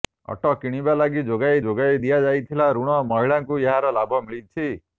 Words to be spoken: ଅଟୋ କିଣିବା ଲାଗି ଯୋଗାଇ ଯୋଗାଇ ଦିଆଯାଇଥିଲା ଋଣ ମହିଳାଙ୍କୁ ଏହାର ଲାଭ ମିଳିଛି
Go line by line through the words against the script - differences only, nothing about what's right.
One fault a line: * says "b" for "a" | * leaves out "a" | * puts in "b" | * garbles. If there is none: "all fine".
all fine